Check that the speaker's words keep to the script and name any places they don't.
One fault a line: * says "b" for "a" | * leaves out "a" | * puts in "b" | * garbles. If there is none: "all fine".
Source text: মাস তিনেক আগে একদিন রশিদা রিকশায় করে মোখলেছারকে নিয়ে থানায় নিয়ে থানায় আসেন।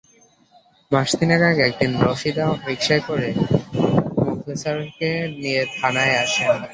* leaves out "নিয়ে থানায়"